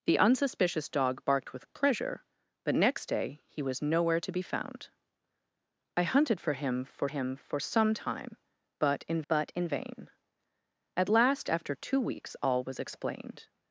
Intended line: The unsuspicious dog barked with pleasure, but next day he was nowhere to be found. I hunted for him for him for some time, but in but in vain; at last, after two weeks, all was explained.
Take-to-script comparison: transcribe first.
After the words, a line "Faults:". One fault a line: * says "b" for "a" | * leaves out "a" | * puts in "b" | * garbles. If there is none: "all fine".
The unsuspicious dog barked with pleasure, but next day he was nowhere to be found. I hunted for him for him for some time, but in but in vain; at last, after two weeks, all was explained.
Faults:
all fine